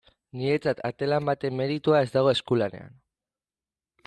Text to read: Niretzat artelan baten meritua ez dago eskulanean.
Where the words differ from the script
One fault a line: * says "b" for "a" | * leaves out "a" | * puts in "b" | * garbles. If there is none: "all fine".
all fine